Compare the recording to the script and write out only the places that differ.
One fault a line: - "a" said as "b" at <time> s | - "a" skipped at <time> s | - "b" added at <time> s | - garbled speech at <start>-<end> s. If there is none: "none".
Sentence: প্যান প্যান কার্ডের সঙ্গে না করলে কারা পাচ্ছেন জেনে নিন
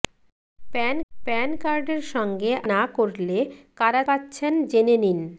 none